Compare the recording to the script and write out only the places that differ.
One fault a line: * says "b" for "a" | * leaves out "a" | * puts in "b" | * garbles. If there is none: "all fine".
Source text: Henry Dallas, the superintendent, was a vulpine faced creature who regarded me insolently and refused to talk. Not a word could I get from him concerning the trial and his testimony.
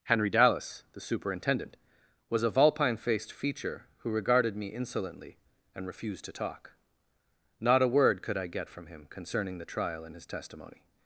* says "feature" for "creature"